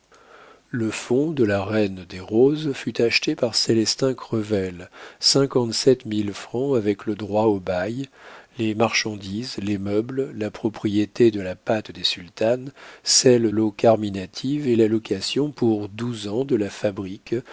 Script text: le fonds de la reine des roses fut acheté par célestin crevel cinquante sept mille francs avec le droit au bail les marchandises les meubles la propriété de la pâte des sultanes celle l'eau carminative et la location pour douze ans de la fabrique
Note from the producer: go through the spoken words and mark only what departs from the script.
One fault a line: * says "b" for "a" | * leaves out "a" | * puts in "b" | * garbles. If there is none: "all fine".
all fine